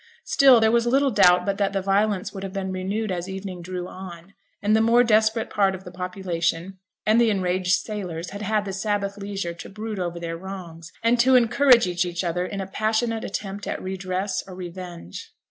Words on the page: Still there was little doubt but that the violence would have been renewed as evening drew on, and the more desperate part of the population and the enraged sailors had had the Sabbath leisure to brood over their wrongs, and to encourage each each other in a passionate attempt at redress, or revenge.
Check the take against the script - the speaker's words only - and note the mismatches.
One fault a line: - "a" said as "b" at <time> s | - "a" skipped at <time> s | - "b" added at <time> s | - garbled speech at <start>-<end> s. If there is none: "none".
none